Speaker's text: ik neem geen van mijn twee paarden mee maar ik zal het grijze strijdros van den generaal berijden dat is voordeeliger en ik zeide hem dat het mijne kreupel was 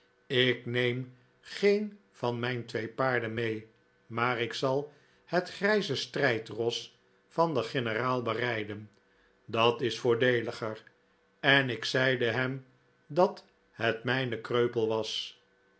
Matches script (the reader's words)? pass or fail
pass